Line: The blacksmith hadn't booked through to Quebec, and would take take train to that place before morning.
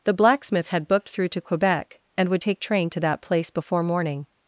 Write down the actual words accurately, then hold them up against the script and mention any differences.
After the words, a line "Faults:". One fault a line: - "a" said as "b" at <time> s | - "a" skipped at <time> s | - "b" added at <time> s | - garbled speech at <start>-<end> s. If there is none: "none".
The blacksmith had booked through to Quebec, and would take train to that place before morning.
Faults:
- "hadn't" said as "had" at 0.7 s
- "take" skipped at 2.6 s